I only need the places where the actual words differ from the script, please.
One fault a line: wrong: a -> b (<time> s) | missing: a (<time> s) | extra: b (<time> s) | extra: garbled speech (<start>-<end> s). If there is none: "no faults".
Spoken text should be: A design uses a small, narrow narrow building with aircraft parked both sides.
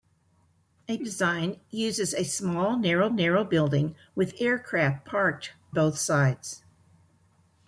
no faults